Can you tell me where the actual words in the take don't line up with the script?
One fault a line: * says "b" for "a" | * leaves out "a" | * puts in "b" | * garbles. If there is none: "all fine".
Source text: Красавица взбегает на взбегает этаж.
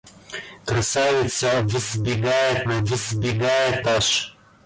all fine